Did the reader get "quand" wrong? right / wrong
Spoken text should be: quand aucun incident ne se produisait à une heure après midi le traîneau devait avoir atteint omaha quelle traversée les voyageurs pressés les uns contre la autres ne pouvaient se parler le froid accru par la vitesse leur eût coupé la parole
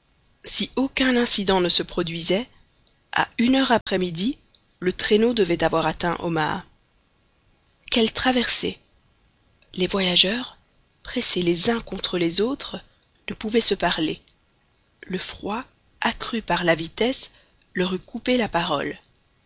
wrong